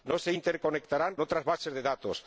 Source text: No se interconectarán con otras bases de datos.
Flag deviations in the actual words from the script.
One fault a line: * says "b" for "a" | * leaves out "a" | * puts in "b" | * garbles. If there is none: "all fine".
* leaves out "con"